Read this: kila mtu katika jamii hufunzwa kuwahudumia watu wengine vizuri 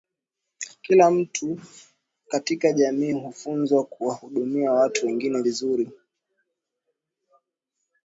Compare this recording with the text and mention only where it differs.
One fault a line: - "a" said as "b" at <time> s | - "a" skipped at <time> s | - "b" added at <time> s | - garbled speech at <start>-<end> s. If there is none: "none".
none